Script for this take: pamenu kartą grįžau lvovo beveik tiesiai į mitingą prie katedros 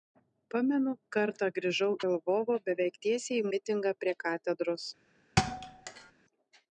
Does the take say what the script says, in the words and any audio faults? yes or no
no